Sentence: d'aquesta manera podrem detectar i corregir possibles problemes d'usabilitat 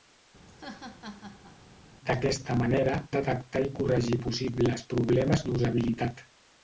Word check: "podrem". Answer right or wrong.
wrong